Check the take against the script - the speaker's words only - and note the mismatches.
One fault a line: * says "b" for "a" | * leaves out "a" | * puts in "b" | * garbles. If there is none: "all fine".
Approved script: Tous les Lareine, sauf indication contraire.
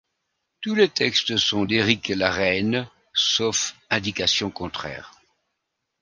* puts in "textes sont d'Éric"